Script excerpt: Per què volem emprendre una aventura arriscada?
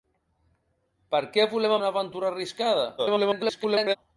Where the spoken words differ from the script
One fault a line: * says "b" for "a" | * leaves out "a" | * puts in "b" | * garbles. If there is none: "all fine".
* leaves out "emprendre"
* garbles